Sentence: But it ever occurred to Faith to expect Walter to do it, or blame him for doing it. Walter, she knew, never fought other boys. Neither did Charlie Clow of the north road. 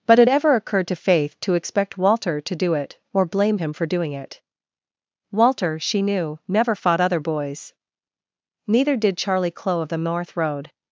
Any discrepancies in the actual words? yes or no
no